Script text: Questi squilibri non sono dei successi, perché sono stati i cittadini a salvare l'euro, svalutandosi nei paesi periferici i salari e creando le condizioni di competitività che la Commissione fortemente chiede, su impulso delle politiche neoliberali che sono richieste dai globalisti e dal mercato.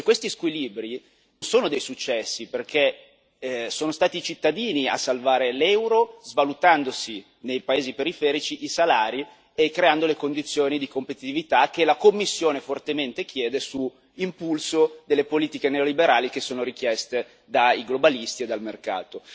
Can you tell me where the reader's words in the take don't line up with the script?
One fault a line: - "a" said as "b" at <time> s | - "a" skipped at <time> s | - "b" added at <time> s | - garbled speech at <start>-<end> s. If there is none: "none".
- "non" skipped at 1.0 s